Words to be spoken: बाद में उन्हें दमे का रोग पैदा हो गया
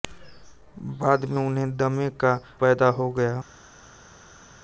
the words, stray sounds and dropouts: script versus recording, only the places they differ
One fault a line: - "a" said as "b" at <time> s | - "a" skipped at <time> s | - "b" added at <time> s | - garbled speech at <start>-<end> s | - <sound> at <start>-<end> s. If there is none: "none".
- "रोग" skipped at 2.3 s